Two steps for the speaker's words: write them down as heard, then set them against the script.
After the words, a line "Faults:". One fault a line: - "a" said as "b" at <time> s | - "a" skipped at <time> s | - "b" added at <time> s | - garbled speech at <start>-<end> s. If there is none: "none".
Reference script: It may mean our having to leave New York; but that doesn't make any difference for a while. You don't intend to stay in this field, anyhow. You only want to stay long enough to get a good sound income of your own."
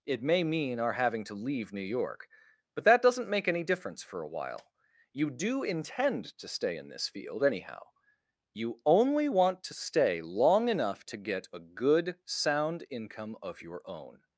It may mean our having to leave New York; but that doesn't make any difference for a while. You do intend to stay in this field, anyhow. You only want to stay long enough to get a good sound income of your own."
Faults:
- "don't" said as "do" at 5.3 s